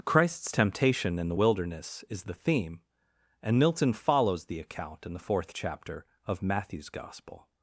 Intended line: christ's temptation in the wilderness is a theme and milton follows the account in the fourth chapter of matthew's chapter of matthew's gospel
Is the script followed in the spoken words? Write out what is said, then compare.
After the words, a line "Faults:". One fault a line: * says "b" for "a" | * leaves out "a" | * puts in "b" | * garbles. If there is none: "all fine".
christ's temptation in the wilderness is the theme and milton follows the account in the fourth chapter of matthew's gospel
Faults:
* says "the" for "a"
* leaves out "chapter of matthew's"